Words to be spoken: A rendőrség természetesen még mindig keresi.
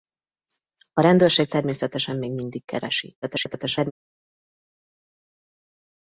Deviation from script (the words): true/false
true